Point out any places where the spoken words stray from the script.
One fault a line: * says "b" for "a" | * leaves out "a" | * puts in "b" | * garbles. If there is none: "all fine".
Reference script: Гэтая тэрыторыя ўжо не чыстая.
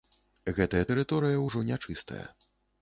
all fine